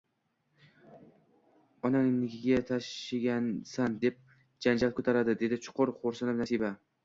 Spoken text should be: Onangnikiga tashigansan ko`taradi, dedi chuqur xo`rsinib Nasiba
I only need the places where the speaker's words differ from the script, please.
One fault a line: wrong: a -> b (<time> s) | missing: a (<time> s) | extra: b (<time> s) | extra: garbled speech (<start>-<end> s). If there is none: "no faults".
extra: deb janjal (4.1 s)